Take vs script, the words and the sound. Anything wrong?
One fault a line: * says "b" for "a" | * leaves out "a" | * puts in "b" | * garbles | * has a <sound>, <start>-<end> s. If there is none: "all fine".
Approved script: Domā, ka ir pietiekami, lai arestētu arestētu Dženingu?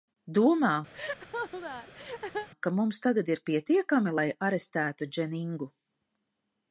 * has a laugh, 0.9-2.5 s
* puts in "mums tagad"
* leaves out "arestētu"